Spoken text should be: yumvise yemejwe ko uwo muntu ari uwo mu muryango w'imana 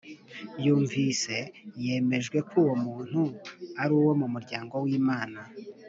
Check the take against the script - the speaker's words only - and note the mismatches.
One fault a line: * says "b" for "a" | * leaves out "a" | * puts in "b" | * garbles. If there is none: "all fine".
all fine